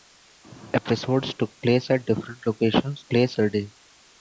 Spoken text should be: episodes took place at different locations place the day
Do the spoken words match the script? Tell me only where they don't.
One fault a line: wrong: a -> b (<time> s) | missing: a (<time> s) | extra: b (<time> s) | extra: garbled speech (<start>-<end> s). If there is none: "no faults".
no faults